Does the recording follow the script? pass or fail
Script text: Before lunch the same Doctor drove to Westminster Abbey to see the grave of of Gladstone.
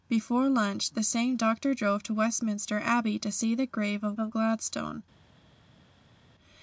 pass